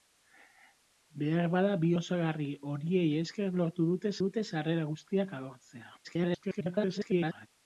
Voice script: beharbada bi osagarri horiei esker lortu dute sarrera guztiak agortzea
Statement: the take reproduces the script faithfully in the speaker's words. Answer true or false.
false